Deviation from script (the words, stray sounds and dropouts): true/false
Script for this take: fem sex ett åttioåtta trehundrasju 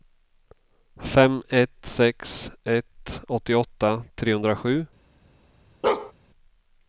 true